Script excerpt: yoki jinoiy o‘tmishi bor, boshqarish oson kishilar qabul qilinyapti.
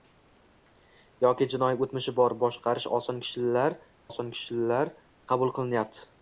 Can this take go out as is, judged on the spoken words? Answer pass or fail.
fail